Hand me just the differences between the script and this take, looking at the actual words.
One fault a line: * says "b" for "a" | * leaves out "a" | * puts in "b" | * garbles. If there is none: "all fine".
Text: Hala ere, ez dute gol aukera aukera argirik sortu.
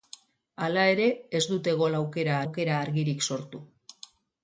all fine